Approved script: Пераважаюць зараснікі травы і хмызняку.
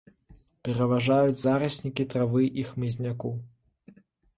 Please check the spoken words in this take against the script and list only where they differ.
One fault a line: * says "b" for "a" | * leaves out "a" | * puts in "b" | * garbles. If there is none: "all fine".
all fine